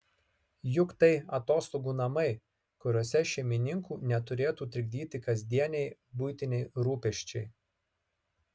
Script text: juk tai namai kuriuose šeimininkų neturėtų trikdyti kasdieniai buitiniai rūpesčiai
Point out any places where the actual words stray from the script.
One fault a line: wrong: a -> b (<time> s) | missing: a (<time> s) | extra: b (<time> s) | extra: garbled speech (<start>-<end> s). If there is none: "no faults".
extra: atostogų (1.4 s)